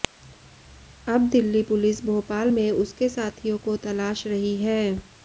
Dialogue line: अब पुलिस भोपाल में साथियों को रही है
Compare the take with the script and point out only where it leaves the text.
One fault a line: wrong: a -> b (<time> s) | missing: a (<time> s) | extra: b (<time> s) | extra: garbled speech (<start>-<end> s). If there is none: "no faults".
extra: दिल्ली (1.3 s)
extra: उसके (2.7 s)
extra: तलाश (3.9 s)